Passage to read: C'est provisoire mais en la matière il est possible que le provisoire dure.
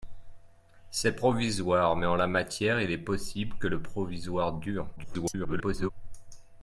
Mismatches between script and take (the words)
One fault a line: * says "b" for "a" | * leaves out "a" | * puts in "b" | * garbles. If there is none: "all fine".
* garbles